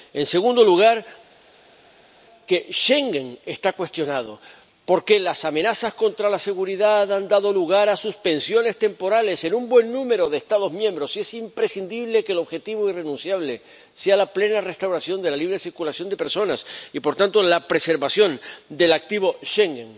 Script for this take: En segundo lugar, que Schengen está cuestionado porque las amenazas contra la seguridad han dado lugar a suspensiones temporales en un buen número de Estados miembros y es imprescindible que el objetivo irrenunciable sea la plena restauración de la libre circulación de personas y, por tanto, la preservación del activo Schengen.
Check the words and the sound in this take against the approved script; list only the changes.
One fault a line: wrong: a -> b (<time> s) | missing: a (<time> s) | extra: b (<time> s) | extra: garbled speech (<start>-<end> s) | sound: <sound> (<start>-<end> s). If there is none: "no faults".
no faults